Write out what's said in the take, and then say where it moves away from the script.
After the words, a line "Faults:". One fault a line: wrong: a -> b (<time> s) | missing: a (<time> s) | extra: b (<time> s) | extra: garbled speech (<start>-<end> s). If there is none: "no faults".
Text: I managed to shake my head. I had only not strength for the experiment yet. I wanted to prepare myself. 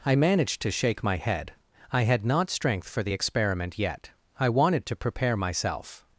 I managed to shake my head. I had not strength for the experiment yet. I wanted to prepare myself.
Faults:
missing: only (2.2 s)